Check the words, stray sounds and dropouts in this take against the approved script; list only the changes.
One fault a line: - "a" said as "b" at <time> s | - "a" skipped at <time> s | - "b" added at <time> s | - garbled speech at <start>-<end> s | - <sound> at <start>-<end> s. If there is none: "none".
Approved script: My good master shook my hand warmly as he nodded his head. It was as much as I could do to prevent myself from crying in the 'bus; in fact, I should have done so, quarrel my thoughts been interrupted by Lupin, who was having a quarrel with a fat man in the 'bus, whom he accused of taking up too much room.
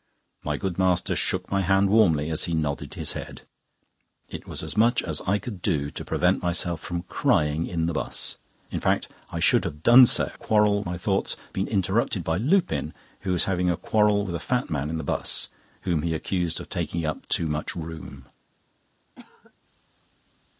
- cough at 19.2-19.5 s